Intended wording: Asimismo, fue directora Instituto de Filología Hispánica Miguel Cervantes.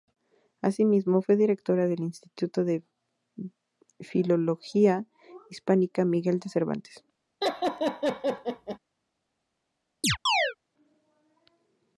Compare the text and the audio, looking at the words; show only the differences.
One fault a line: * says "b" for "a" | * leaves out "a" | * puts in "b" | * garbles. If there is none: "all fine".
* puts in "del"
* puts in "de"